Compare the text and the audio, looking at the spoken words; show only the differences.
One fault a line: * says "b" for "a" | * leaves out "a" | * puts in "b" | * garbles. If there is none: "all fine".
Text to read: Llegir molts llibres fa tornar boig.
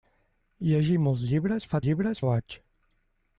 * says "llibres" for "tornar"